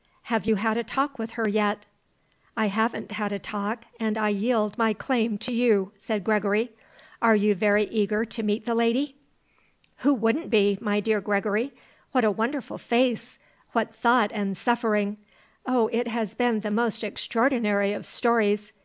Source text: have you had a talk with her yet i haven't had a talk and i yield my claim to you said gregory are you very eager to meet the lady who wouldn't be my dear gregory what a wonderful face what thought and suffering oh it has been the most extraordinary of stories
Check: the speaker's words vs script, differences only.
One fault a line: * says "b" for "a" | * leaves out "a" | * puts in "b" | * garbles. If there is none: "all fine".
all fine